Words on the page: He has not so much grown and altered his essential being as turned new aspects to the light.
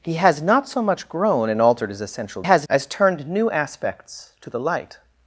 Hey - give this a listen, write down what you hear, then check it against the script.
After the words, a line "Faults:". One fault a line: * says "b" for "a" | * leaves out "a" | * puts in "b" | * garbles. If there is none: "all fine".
He has not so much grown and altered his essential has as turned new aspects to the light.
Faults:
* says "has" for "being"